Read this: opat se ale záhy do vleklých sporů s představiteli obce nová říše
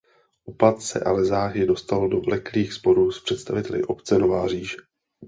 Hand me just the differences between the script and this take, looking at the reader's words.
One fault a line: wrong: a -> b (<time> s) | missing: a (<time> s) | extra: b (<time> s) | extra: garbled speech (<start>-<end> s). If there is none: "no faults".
extra: dostal (1.6 s)